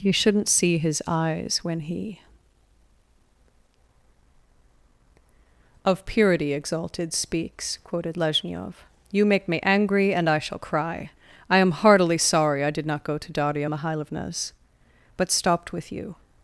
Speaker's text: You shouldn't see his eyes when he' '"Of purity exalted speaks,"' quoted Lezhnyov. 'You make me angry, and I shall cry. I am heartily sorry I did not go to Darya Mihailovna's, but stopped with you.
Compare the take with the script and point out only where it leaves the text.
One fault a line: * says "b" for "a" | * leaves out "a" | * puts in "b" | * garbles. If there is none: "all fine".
all fine